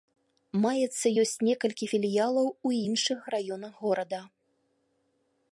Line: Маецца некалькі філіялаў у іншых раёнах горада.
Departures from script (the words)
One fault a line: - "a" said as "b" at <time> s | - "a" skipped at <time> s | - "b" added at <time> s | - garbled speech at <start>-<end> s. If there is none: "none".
- "ёсць" added at 1.2 s